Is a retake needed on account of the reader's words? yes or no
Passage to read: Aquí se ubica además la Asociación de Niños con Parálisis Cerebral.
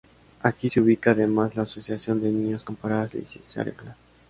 no